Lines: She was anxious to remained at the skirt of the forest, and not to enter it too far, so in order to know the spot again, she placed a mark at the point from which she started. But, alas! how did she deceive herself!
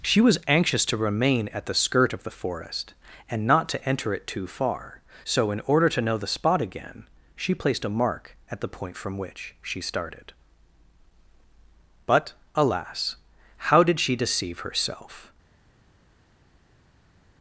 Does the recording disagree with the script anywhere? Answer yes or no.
yes